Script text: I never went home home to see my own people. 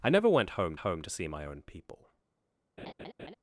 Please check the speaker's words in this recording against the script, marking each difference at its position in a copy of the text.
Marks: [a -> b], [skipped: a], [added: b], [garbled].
I never went home home to see my own people.